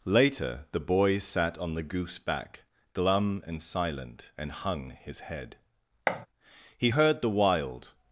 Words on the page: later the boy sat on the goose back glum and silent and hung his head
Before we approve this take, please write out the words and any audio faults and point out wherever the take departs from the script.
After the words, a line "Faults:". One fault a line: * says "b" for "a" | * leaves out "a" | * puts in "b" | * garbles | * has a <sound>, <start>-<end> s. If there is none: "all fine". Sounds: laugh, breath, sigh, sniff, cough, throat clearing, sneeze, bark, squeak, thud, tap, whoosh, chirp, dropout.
later the boy sat on the goose back glum and silent and hung his head he heard the wild
Faults:
* has a thud, 6.1-6.3 s
* puts in "he heard the wild"